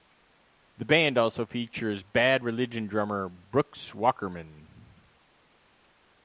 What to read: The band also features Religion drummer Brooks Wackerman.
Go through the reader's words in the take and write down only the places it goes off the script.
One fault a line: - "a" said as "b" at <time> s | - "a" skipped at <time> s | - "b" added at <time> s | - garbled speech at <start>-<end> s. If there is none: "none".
- "Bad" added at 2.0 s